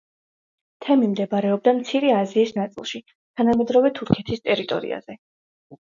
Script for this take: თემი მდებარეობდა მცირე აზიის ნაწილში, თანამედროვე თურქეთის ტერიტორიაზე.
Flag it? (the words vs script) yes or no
no